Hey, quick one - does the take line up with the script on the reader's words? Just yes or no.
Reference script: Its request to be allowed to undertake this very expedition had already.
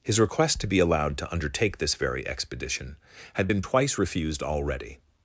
no